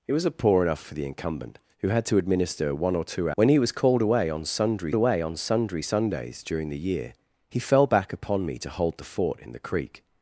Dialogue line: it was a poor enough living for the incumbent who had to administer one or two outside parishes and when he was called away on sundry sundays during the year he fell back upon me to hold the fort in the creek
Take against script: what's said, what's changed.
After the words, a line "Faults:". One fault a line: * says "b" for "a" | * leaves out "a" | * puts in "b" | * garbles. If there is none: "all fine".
it was a poor enough for the incumbent who had to administer one or two when he was called away on sundry away on sundry sundays during the year he fell back upon me to hold the fort in the creek
Faults:
* leaves out "living"
* leaves out "outside parishes and"
* puts in "away on sundry"